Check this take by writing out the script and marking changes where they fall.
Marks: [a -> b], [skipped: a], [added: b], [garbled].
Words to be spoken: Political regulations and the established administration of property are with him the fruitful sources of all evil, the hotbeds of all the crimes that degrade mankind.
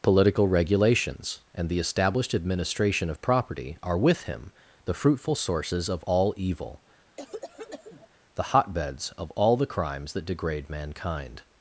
Political regulations and the established administration of property are with him the fruitful sources of all evil, the hotbeds of all the crimes that degrade mankind.